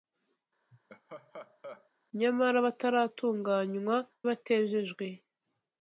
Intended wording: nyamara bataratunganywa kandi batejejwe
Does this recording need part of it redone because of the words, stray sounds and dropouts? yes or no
yes